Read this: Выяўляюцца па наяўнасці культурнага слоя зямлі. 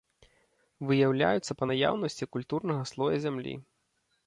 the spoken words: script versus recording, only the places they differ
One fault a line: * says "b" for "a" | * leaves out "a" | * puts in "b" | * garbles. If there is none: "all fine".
all fine